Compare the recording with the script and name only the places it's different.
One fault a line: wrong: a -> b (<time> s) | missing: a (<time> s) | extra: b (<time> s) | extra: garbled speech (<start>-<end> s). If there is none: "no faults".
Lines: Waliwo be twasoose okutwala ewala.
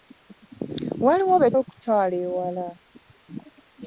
missing: twasoose (1.5 s)